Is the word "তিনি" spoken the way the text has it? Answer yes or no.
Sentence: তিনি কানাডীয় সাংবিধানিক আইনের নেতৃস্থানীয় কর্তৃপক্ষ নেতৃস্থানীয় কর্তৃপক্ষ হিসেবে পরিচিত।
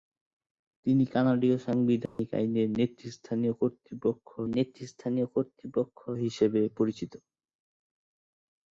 yes